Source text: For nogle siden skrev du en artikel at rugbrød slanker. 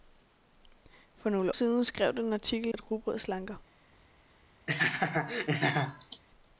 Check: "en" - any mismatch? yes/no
no